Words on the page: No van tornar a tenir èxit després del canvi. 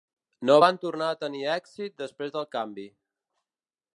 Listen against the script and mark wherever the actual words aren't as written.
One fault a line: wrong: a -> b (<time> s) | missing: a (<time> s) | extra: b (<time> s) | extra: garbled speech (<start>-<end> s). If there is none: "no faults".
no faults